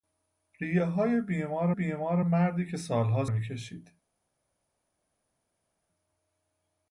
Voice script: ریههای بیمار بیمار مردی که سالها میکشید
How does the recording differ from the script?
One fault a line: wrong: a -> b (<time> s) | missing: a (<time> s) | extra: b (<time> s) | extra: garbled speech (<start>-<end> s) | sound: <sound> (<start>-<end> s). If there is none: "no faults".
no faults